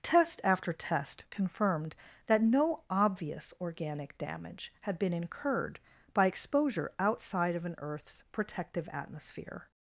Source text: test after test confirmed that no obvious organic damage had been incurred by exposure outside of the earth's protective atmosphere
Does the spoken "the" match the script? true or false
false